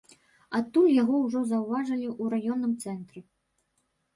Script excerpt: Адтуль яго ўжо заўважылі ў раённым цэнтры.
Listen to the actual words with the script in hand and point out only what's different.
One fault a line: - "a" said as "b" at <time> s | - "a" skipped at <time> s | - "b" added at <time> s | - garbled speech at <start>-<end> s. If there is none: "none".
none